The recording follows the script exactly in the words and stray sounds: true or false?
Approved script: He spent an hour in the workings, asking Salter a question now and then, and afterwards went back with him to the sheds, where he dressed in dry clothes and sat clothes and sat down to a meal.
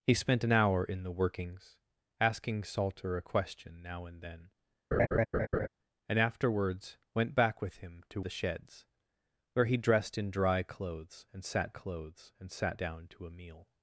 false